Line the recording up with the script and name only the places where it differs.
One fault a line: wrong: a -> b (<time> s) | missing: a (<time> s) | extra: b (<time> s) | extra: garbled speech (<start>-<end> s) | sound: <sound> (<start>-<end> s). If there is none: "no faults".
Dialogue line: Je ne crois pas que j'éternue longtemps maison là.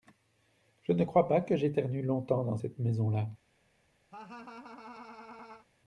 extra: dans cette (2.4 s)
sound: laugh (4.1-5.7 s)